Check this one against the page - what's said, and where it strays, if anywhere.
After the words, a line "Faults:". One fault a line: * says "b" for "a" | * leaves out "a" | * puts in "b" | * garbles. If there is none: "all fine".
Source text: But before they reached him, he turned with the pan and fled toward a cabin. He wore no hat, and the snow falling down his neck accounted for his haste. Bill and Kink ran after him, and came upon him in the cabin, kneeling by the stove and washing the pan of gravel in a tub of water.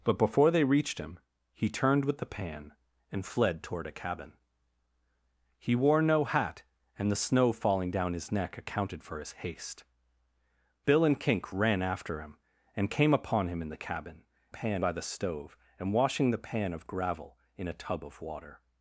But before they reached him, he turned with the pan and fled toward a cabin. He wore no hat, and the snow falling down his neck accounted for his haste. Bill and Kink ran after him, and came upon him in the cabin, pan by the stove and washing the pan of gravel in a tub of water.
Faults:
* says "pan" for "kneeling"